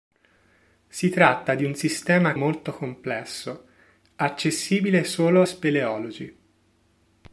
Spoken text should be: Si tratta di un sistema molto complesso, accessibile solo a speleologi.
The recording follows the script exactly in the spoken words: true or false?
true